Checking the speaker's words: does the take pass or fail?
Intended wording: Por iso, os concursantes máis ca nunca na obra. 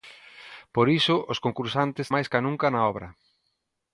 pass